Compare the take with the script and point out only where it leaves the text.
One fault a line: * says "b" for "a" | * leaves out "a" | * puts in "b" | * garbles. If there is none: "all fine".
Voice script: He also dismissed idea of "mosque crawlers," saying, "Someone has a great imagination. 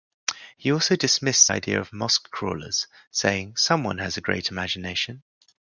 all fine